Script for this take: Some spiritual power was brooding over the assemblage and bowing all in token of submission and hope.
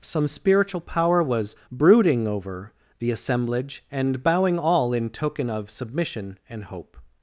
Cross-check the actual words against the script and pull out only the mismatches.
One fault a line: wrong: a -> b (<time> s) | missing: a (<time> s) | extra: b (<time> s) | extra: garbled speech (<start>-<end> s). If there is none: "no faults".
no faults